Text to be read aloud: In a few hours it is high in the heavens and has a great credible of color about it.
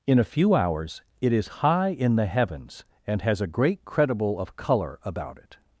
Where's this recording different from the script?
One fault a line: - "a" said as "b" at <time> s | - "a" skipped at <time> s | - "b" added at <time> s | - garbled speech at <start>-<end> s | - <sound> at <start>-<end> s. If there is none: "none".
none